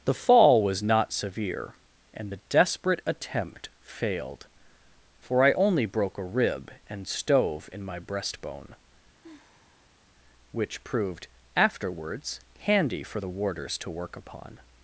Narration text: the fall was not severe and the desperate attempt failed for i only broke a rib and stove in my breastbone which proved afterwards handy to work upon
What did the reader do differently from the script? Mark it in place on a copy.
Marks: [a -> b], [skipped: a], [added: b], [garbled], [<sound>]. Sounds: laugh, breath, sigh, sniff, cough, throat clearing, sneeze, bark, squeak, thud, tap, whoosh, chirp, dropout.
the fall was not severe and the desperate attempt failed for i only broke a rib and stove in my breastbone [sigh] which proved afterwards handy [added: for the warders] to work upon